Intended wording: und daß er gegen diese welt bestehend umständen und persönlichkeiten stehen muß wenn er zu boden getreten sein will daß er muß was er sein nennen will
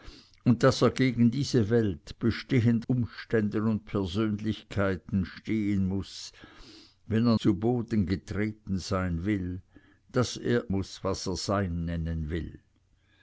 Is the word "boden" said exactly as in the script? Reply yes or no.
yes